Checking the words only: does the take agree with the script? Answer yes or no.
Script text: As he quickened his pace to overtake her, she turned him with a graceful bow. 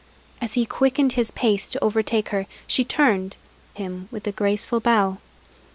yes